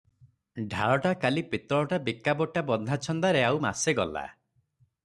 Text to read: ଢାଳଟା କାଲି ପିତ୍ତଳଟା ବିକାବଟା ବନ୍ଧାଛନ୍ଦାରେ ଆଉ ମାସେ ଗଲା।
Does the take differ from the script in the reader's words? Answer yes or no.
no